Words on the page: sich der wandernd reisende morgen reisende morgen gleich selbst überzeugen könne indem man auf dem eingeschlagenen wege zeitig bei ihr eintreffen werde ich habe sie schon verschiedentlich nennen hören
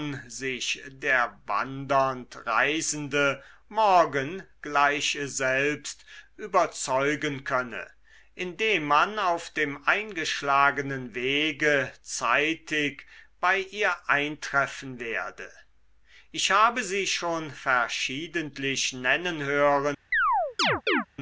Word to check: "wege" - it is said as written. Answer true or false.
true